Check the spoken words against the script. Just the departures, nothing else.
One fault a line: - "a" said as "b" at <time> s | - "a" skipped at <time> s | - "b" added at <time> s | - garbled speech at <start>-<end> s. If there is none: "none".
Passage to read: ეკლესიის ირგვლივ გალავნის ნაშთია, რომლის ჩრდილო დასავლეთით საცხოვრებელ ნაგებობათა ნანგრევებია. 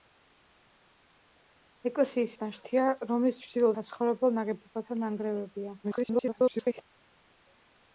- "ირგვლივ გალავნის" skipped at 2.3 s
- "დასავლეთით" skipped at 3.7 s
- garbled speech at 5.8-6.8 s